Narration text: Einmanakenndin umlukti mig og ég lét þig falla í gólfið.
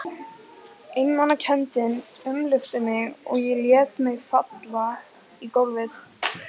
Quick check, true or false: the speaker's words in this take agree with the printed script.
false